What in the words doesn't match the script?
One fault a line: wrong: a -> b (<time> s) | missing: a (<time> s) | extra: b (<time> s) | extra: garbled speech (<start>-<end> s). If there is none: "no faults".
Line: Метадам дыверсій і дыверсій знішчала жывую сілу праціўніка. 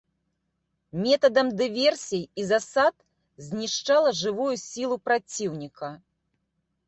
wrong: дыверсій -> засад (2.5 s)